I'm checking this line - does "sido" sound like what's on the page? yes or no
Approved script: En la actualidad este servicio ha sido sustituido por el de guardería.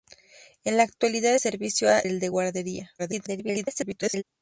no